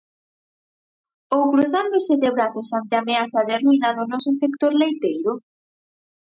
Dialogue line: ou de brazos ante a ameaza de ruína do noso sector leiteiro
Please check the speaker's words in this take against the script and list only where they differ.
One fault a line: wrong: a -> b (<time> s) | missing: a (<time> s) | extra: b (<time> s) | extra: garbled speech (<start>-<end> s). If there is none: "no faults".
extra: cruzándose (1.5 s)